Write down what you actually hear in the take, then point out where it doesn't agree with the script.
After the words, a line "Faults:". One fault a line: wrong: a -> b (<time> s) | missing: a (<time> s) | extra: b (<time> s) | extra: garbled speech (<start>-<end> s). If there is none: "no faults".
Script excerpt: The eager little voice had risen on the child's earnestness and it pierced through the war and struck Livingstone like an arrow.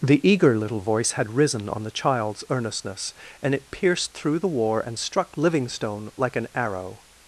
The eager little voice had risen on the child's earnestness and it pierced through the war and struck Livingstone like an arrow.
Faults:
no faults